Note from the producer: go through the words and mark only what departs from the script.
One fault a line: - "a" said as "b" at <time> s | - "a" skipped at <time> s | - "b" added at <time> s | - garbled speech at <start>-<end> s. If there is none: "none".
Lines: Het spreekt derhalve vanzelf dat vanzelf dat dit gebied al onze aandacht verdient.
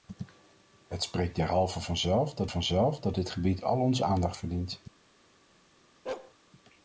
none